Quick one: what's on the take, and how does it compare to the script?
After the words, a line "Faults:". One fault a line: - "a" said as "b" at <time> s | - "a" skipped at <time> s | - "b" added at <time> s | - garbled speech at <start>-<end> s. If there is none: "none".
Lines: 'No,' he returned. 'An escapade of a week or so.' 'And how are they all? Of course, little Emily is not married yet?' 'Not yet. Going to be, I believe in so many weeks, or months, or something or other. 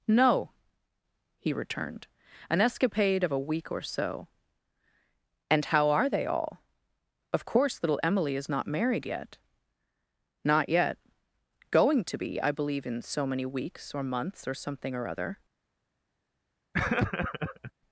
'No,' he returned. 'An escapade of a week or so.' 'And how are they all? Of course, little Emily is not married yet?' 'Not yet. Going to be, I believe in so many weeks, or months, or something or other.
Faults:
none